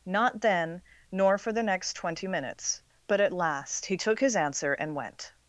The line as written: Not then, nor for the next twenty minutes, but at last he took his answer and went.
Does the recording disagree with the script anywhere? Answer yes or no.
no